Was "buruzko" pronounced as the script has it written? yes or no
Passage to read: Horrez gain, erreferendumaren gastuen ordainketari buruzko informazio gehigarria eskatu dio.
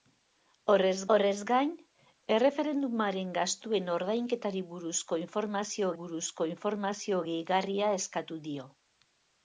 yes